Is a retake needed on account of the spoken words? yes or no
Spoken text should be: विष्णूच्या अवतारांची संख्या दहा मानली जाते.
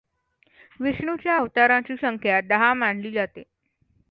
no